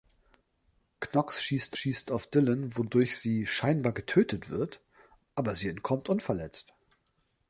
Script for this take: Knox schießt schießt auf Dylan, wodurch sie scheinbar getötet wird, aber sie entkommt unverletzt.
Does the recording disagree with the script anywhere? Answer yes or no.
no